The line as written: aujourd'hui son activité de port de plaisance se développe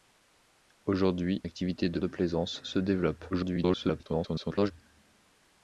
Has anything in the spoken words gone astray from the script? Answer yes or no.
yes